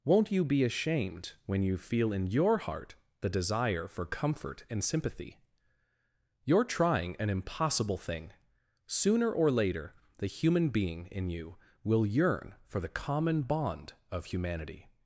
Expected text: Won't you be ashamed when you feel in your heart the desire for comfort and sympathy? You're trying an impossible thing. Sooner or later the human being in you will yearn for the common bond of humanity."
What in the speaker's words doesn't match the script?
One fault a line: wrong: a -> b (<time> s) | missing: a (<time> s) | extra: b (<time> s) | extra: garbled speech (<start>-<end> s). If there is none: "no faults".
no faults